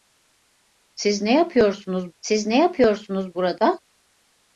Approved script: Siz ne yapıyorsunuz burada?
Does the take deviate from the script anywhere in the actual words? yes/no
yes